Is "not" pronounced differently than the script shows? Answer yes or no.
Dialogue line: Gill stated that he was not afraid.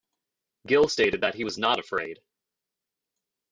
no